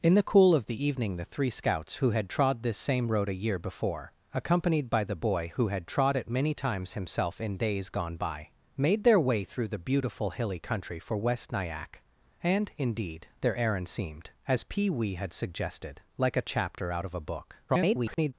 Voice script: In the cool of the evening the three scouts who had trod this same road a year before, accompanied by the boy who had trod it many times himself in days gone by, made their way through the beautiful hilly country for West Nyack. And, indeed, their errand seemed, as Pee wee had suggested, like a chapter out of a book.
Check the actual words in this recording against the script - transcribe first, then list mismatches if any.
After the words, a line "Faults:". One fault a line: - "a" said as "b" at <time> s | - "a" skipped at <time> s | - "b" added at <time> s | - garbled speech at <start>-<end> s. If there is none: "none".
In the cool of the evening the three scouts who had trod this same road a year before, accompanied by the boy who had trod it many times himself in days gone by, made their way through the beautiful hilly country for West Nyack. And, indeed, their errand seemed, as Pee wee had suggested, like a chapter out of a book. [garbled]
Faults:
- garbled speech at 17.7-18.3 s